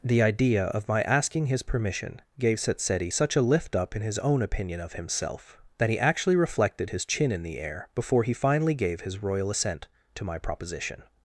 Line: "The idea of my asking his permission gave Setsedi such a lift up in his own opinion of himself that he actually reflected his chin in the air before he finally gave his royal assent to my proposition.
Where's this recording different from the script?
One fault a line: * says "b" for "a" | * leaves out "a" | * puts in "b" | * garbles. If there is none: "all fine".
all fine